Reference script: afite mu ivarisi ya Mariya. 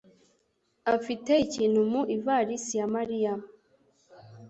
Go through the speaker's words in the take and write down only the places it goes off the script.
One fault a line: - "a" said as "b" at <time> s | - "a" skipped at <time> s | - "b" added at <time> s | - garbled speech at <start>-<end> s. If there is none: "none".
- "ikintu" added at 1.4 s